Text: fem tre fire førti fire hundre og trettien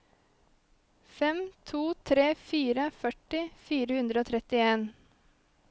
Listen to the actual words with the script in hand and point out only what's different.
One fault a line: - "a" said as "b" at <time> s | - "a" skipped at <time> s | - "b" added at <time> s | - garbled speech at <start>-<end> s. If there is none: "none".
- "to" added at 1.7 s